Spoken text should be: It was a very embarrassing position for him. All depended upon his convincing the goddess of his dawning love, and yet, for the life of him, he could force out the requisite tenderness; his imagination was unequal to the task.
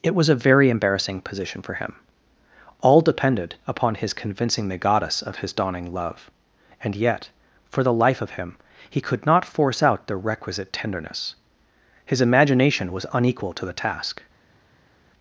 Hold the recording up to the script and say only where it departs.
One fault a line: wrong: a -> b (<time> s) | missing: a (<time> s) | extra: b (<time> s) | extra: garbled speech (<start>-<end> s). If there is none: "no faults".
extra: not (9.2 s)